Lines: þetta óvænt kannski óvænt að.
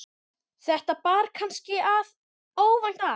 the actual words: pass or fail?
fail